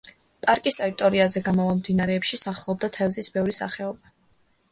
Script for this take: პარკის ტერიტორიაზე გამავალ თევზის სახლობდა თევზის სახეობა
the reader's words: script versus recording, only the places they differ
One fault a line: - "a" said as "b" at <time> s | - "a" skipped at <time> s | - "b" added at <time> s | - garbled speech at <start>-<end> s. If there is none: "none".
- "თევზის" said as "მდინარეებში" at 1.8 s
- "ბევრი" added at 3.4 s